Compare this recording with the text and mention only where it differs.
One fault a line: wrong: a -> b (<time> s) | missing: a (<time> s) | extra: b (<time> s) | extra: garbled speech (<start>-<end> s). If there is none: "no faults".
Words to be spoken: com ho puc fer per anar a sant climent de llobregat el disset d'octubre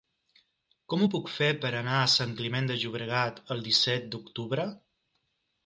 no faults